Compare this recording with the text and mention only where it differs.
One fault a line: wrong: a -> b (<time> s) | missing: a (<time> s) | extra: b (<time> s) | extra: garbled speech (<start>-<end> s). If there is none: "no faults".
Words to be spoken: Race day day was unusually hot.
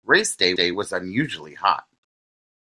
no faults